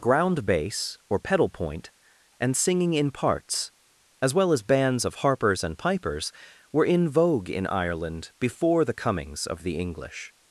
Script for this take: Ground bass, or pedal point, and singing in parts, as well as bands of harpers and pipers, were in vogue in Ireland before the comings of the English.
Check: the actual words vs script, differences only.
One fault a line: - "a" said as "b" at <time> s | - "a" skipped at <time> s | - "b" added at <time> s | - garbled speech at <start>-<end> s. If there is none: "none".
none